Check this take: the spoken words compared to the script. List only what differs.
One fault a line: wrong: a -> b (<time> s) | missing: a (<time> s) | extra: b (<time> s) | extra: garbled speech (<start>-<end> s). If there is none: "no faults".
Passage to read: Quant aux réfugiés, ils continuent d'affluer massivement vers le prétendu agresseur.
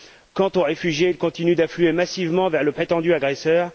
no faults